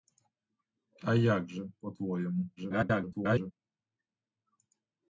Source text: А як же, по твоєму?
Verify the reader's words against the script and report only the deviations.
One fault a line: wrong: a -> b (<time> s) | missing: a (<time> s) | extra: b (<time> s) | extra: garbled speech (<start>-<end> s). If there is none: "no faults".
extra: garbled speech (2.6-3.5 s)